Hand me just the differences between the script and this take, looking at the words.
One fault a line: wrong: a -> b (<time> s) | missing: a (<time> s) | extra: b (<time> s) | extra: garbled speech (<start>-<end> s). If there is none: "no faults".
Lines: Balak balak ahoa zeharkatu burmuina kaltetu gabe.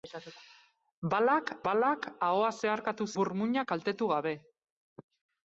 no faults